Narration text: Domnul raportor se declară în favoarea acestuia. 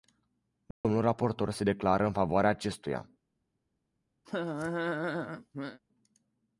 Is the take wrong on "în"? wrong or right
right